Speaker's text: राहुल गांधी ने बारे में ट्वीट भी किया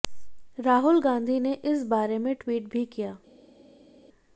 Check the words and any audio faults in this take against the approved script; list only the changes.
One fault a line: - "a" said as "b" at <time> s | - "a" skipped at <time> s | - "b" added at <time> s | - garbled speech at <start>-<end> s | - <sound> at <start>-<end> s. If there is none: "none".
- "इस" added at 1.6 s